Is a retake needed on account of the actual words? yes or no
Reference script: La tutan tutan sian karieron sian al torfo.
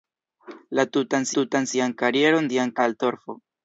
no